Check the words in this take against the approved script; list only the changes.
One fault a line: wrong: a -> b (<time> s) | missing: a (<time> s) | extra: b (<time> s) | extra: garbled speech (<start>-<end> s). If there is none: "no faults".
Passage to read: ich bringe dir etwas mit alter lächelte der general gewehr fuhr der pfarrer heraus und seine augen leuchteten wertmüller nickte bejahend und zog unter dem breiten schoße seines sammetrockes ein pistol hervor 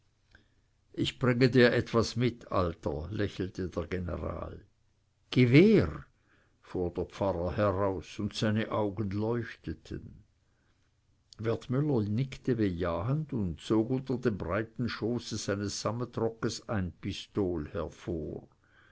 no faults